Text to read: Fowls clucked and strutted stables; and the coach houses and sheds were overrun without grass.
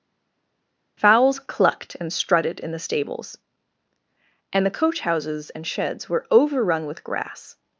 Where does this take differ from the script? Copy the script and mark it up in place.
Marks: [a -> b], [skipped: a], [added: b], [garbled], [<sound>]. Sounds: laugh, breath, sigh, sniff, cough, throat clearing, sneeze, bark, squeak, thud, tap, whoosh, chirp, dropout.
Fowls clucked and strutted [added: in the] stables; and the coach houses and sheds were overrun [without -> with] grass.